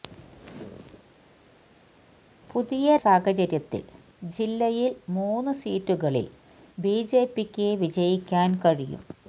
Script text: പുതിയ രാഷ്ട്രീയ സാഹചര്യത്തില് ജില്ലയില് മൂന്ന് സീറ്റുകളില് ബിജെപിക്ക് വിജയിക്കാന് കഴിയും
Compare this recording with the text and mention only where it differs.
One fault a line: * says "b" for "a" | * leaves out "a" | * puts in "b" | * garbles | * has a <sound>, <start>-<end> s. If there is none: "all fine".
* leaves out "രാഷ്ട്രീയ"